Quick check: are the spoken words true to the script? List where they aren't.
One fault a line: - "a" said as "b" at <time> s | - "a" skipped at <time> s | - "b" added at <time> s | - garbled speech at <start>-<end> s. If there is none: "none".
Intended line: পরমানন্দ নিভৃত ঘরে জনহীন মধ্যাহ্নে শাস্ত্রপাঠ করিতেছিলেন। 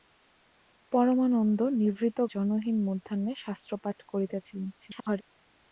- "ঘরে" skipped at 2.2 s
- garbled speech at 4.8-5.2 s